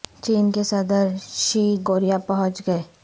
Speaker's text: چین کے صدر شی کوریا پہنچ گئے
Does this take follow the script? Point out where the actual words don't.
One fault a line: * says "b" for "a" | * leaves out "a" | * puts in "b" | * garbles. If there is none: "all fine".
all fine